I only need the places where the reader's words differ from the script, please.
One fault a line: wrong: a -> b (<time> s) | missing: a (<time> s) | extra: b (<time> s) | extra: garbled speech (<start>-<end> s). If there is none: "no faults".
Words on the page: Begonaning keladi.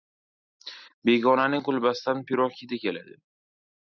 extra: kulbasidan pirog hidi (1.7 s)